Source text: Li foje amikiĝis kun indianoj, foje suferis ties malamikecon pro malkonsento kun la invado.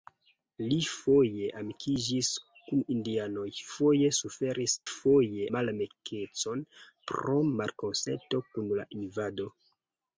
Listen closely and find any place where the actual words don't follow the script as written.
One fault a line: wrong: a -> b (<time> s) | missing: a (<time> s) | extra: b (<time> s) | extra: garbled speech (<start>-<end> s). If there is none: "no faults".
wrong: ties -> foje (4.9 s)